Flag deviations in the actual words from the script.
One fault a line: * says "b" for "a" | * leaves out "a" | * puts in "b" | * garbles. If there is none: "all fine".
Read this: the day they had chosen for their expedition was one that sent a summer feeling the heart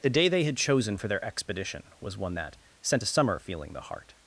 all fine